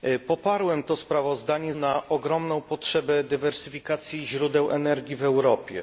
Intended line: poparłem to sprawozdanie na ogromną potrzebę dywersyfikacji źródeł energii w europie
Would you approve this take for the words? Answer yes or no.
yes